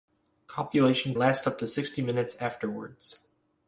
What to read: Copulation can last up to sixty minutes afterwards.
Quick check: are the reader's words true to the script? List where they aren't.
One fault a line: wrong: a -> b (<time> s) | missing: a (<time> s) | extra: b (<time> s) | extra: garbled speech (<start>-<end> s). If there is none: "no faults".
missing: can (1.1 s)